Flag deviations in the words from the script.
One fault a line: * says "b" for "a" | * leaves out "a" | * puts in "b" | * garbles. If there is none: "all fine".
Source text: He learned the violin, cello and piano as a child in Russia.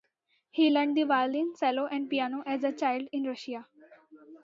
all fine